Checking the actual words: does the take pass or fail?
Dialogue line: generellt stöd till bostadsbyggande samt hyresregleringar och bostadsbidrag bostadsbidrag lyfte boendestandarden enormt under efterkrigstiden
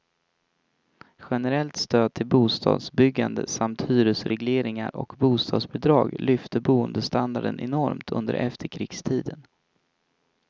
fail